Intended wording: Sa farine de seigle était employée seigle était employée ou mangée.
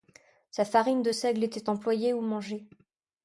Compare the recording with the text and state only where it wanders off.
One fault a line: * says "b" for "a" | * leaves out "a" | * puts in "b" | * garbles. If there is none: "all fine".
* leaves out "seigle était employée"